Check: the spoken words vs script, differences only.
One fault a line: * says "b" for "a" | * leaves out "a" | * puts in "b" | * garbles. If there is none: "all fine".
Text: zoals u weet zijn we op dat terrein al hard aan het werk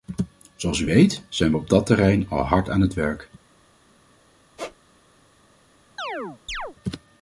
all fine